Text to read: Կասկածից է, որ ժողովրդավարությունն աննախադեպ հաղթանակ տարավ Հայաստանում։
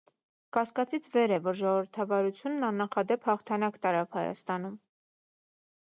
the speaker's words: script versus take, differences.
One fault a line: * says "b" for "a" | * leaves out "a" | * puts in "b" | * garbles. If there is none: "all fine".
* puts in "վեր"